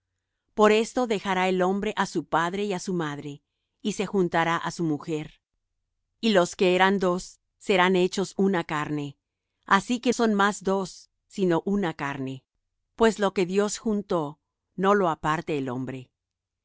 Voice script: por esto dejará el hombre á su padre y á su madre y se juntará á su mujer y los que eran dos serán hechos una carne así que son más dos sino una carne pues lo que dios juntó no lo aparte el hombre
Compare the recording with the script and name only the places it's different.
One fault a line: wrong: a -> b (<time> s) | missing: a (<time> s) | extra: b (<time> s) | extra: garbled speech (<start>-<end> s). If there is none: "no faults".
no faults